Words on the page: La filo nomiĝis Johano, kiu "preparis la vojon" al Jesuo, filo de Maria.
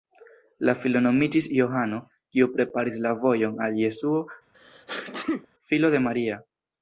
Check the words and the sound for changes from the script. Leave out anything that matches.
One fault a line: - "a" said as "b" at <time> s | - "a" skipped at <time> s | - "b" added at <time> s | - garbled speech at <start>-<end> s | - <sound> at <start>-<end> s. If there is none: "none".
- sneeze at 4.5-5.5 s